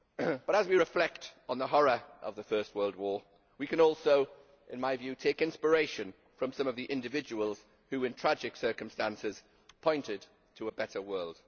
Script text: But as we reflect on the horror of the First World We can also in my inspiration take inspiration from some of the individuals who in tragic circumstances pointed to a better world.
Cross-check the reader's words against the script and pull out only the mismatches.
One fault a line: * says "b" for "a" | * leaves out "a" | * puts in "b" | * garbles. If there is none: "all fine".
* puts in "War"
* says "view" for "inspiration"